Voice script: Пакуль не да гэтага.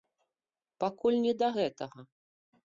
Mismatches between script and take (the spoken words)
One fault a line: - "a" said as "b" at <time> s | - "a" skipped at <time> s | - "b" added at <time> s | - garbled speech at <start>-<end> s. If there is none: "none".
none